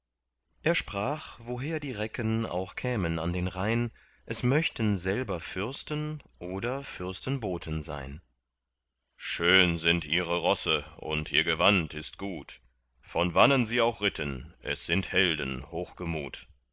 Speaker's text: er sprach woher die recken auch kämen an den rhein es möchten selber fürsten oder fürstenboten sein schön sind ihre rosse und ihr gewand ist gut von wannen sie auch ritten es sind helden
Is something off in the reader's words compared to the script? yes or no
no